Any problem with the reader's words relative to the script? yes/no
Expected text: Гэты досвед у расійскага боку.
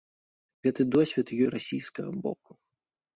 no